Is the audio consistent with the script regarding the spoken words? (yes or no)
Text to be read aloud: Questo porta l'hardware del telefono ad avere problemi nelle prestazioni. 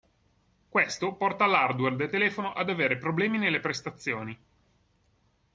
yes